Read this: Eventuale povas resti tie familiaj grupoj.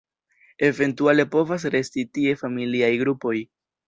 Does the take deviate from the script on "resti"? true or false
false